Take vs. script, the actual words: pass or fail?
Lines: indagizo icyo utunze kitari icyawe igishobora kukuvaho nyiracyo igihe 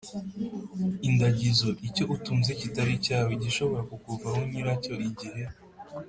pass